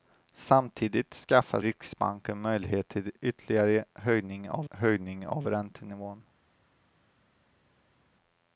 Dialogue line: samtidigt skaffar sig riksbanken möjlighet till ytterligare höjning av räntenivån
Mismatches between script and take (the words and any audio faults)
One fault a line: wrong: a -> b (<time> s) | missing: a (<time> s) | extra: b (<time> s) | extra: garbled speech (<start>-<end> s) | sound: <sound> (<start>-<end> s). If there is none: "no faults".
missing: sig (1.6 s)
extra: höjning av (4.7 s)